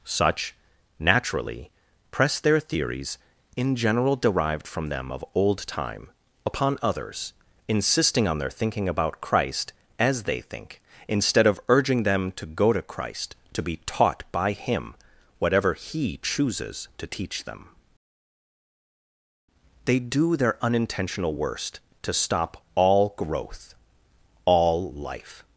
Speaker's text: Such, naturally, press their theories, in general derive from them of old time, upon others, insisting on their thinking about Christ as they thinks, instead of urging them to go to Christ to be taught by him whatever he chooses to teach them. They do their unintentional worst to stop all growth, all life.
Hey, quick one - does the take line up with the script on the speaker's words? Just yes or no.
no